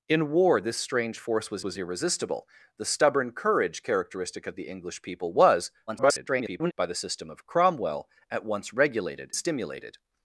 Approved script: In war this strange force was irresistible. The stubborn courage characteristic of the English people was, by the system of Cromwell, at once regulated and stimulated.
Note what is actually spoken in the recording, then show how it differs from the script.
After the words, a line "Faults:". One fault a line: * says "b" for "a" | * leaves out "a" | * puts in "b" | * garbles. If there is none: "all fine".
In war this strange force was was irresistible. The stubborn courage characteristic of the English people was, [garbled] by the system of Cromwell, at once regulated stimulated.
Faults:
* puts in "was"
* garbles
* leaves out "and"